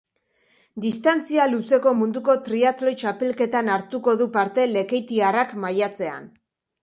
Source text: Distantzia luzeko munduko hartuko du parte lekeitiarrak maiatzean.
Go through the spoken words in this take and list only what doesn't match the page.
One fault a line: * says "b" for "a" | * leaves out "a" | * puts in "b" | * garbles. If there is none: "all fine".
* puts in "triatloi txapelketan"